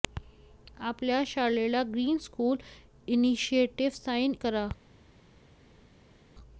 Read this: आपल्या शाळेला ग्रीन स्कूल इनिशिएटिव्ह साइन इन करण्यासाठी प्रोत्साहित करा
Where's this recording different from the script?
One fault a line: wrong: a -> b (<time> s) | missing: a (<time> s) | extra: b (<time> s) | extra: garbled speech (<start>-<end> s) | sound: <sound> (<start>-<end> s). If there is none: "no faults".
missing: इन करण्यासाठी प्रोत्साहित (4.3 s)